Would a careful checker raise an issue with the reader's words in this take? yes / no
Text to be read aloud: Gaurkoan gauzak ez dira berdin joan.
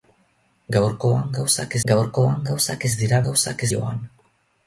yes